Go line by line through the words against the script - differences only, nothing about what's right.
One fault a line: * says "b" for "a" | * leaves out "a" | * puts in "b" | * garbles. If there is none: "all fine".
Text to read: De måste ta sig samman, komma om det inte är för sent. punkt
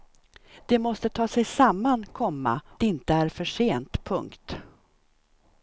* leaves out "om det"